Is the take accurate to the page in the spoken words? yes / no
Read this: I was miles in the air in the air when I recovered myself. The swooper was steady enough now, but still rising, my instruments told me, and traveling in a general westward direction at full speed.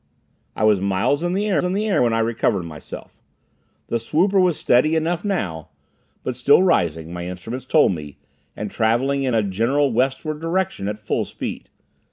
yes